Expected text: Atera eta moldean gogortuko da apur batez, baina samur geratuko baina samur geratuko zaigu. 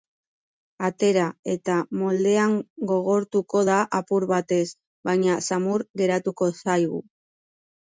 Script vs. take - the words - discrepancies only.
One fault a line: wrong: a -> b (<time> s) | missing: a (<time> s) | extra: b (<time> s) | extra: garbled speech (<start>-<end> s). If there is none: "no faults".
missing: baina samur geratuko (6.6 s)